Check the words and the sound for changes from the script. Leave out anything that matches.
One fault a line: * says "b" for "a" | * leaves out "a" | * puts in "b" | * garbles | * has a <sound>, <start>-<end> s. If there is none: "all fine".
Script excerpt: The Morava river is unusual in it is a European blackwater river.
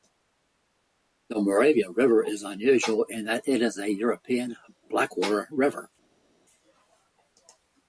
* puts in "that"